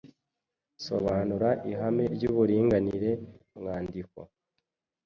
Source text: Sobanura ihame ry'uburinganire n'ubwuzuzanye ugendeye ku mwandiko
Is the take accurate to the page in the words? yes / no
no